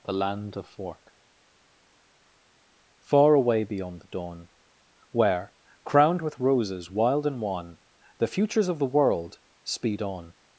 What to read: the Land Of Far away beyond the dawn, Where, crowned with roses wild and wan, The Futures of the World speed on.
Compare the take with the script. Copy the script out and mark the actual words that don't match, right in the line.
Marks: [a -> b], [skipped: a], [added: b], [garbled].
the Land Of [added: fork] Far away beyond the dawn, Where, crowned with roses wild and wan, The Futures of the World speed on.